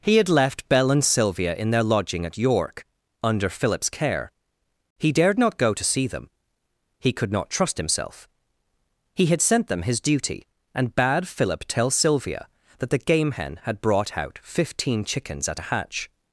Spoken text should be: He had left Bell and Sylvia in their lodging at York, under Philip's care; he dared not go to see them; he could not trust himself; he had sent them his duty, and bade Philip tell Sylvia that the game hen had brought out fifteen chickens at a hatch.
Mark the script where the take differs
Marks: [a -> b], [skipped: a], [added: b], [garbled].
He had left Bell and Sylvia in their lodging at York, under Philip's care; he dared not go to see them; he could not trust himself; he had sent them his duty, and bade Philip tell Sylvia that the game hen had brought out fifteen chickens at a hatch.